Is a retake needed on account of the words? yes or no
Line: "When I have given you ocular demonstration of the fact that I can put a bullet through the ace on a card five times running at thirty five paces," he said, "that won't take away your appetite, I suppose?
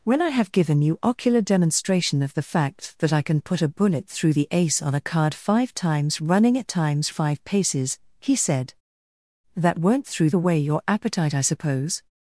yes